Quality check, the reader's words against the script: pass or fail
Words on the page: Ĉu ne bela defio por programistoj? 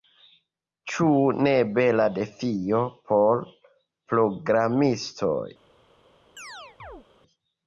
pass